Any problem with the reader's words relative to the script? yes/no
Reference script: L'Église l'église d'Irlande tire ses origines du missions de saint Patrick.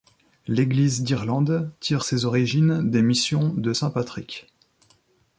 yes